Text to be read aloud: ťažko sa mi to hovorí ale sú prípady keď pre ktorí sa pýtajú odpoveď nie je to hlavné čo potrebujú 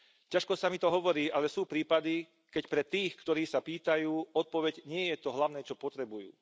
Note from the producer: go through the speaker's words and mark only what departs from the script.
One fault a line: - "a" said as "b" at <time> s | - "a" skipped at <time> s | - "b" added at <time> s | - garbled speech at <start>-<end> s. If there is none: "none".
- "tých" added at 2.8 s